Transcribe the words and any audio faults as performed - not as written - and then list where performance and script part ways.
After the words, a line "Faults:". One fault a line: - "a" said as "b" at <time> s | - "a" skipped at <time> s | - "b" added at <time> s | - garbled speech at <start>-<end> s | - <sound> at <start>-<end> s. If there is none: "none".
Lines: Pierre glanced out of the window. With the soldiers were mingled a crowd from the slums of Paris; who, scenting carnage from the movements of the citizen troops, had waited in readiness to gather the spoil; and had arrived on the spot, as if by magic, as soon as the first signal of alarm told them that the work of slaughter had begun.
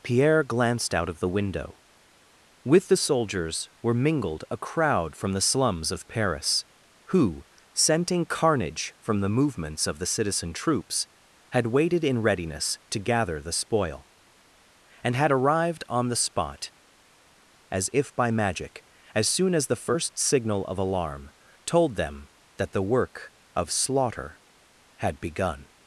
Pierre glanced out of the window. With the soldiers were mingled a crowd from the slums of Paris; who, scenting carnage from the movements of the citizen troops, had waited in readiness to gather the spoil; and had arrived on the spot, as if by magic, as soon as the first signal of alarm told them that the work of slaughter had begun.
Faults:
none